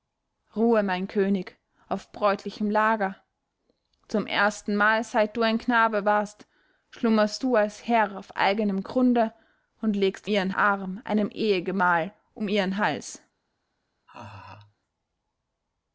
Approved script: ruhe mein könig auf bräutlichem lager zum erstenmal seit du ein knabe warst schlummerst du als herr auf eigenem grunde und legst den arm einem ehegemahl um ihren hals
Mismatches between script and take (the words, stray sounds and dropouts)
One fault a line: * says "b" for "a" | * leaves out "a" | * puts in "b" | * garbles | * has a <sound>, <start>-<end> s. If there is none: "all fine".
* says "ihren" for "den"
* has a laugh, 14.1-14.8 s